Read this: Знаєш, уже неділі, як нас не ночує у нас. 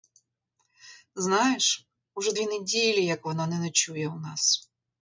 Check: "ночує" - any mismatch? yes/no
no